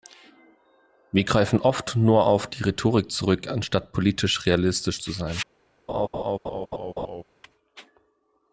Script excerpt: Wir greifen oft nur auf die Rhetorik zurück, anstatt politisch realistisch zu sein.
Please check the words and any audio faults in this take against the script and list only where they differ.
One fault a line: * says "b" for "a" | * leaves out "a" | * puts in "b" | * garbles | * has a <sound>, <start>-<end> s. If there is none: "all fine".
* has a laugh, 5.9-7.2 s